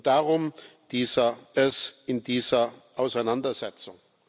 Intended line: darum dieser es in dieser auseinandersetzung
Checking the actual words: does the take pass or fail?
pass